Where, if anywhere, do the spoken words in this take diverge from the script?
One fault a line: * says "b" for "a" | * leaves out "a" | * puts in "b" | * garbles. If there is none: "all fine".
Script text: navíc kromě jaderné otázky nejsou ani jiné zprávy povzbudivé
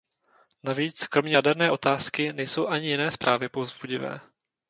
all fine